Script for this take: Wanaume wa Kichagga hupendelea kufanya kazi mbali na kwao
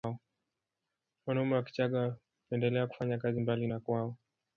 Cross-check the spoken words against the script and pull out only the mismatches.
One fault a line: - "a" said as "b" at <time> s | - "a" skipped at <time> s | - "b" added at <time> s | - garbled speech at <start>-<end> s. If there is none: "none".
none